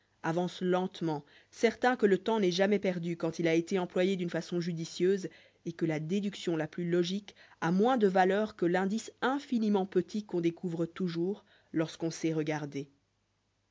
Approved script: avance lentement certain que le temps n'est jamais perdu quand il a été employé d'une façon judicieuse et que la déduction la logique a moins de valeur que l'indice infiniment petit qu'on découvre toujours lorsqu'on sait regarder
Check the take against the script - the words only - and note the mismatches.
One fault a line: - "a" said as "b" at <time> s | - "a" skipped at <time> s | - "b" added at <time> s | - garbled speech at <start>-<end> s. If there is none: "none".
- "plus" added at 6.7 s